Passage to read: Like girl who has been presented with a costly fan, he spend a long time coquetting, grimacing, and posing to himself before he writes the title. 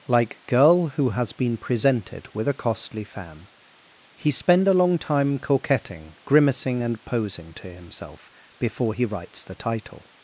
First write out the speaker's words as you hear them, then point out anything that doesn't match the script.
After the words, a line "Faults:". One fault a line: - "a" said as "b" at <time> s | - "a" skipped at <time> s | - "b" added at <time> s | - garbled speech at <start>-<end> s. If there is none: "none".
Like girl who has been presented with a costly fan, he spend a long time coquetting, grimacing, and posing to himself before he writes the title.
Faults:
none